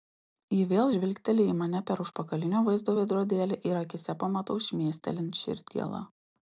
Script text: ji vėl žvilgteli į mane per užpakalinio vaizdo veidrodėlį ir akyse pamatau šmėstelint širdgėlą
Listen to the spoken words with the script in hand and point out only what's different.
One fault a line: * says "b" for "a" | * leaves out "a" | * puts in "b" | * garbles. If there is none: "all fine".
all fine